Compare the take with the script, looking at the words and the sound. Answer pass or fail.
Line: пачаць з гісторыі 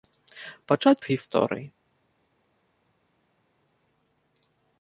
pass